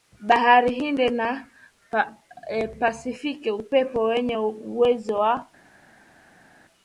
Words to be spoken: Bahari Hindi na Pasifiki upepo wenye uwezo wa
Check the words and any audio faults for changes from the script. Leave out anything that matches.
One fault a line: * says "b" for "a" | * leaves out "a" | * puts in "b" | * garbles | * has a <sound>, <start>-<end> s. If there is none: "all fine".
all fine